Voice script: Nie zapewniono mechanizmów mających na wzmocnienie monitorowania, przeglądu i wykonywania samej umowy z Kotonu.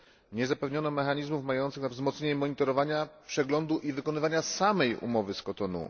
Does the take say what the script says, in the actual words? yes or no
yes